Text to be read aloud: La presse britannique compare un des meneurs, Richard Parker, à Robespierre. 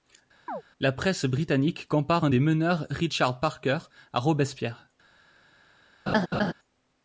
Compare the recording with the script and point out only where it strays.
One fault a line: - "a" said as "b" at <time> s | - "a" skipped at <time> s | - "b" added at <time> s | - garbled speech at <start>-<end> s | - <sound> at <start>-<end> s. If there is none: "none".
- chirp at 0.5-0.6 s
- laugh at 6.1-6.5 s